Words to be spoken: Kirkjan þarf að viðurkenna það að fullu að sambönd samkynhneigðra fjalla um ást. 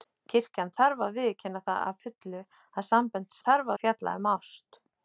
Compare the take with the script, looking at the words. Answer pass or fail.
fail